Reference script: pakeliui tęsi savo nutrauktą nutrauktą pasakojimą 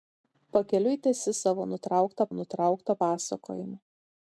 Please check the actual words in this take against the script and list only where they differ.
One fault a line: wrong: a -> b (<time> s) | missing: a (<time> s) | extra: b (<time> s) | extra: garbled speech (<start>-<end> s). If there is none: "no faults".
no faults